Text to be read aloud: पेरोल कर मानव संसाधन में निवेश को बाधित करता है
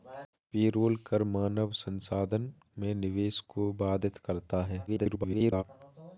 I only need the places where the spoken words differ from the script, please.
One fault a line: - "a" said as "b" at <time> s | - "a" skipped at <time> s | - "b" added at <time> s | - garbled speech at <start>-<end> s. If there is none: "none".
- garbled speech at 4.9-5.6 s